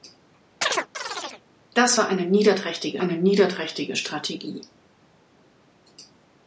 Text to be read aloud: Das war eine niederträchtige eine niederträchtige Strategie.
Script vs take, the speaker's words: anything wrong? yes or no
no